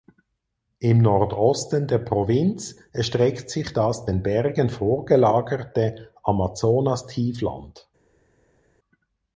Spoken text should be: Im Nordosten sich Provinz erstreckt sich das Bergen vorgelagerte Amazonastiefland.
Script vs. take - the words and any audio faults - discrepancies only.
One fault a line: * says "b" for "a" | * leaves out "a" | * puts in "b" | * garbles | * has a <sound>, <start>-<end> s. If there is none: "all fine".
* says "der" for "sich"
* puts in "den"